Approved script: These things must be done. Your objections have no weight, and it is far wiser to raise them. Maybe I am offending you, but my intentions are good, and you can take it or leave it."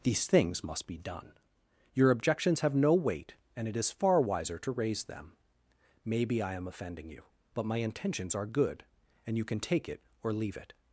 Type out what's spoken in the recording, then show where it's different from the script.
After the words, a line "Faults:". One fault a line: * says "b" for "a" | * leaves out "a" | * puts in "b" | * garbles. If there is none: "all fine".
These things must be done. Your objections have no weight, and it is far wiser to raise them. Maybe I am offending you, but my intentions are good, and you can take it or leave it."
Faults:
all fine